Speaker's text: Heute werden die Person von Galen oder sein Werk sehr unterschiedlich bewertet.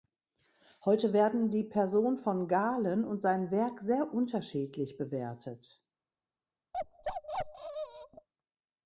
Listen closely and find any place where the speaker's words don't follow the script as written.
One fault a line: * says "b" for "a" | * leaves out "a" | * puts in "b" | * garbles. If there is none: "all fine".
* says "und" for "oder"